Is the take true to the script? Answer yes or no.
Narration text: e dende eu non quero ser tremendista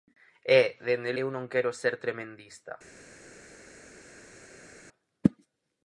yes